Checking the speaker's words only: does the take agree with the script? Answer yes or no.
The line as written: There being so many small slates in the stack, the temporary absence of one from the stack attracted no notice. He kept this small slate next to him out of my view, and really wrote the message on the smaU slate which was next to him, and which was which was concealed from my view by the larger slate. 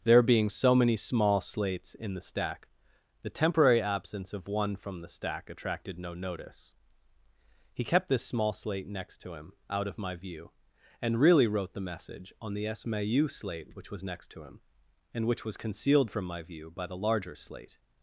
no